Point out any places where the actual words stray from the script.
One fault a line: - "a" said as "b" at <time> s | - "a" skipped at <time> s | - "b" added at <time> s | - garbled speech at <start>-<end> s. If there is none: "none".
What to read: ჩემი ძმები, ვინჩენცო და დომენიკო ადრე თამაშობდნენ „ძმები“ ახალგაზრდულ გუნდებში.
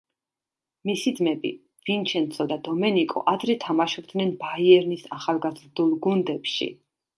- "ჩემი" said as "მისი" at 0.9 s
- "ძმები" said as "ბაიერნის" at 4.5 s